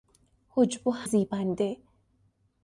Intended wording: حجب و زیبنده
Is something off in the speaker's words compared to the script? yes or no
no